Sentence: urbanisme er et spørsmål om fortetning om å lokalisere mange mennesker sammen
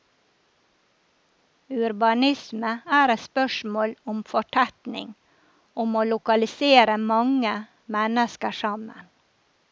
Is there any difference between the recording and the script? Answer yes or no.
no